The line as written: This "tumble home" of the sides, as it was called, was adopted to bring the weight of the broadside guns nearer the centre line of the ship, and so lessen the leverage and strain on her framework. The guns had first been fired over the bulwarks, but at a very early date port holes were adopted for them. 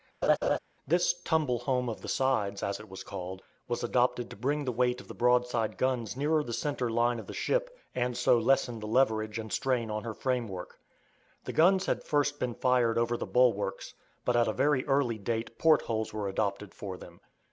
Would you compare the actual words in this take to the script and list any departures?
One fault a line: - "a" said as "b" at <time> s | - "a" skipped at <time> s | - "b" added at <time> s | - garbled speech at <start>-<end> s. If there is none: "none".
none